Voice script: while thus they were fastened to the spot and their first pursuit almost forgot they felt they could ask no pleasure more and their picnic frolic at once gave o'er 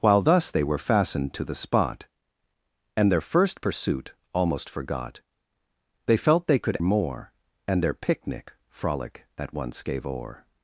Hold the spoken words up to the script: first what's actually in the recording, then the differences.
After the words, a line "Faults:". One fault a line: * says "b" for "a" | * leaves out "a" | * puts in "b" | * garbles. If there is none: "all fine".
while thus they were fastened to the spot and their first pursuit almost forgot they felt they could more and their picnic frolic at once gave o'er
Faults:
* leaves out "ask no pleasure"